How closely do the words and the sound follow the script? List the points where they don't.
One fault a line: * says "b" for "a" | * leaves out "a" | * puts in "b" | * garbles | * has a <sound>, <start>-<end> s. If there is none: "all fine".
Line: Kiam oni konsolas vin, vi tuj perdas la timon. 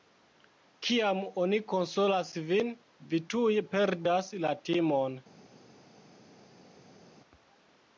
all fine